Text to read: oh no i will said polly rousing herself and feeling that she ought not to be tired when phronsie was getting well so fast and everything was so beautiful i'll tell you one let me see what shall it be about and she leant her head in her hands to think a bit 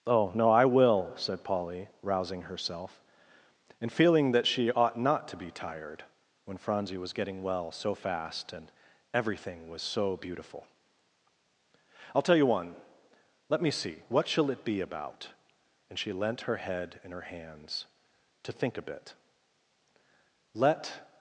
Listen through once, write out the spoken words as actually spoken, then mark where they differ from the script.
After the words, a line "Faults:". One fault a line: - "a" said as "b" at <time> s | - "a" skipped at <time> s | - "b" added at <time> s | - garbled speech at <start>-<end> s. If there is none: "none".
oh no i will said polly rousing herself and feeling that she ought not to be tired when phronsie was getting well so fast and everything was so beautiful i'll tell you one let me see what shall it be about and she leant her head in her hands to think a bit let
Faults:
- "let" added at 20.5 s